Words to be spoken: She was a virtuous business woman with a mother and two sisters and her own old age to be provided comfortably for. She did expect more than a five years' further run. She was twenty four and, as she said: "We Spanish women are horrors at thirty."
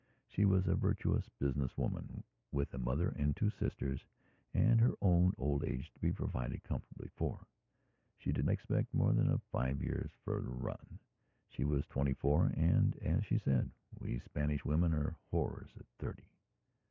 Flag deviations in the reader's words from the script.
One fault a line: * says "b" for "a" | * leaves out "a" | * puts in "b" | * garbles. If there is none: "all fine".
all fine